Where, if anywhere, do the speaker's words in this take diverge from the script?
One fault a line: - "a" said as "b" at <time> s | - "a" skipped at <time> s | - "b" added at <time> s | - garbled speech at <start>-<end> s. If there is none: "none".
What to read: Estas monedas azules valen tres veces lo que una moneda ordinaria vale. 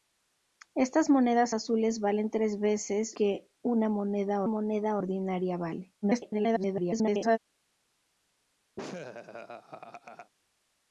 - "lo" skipped at 3.2 s
- "moneda" added at 4.5 s
- garbled speech at 6.0-7.4 s